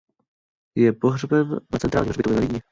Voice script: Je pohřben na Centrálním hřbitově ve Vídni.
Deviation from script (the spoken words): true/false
false